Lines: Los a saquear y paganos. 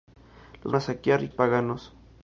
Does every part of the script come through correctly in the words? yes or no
yes